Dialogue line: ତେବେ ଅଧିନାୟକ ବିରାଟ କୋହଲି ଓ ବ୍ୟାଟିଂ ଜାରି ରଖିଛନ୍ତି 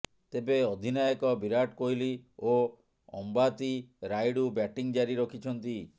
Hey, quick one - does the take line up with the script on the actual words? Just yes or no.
no